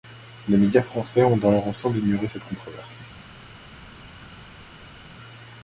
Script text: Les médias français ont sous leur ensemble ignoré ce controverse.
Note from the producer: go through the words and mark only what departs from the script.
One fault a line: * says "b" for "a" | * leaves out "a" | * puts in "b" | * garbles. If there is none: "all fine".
* says "dans" for "sous"
* says "cette" for "ce"